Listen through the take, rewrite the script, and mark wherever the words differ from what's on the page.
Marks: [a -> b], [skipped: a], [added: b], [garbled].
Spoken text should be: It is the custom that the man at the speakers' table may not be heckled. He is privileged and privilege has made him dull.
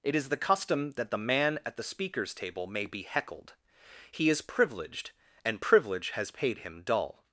It is the custom that the man at the speakers' table may [skipped: not] be heckled. He is privileged and privilege has [made -> paid] him dull.